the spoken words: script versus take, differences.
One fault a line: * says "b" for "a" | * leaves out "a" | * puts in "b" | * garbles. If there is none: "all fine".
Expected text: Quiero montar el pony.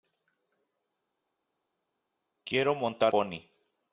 * leaves out "el"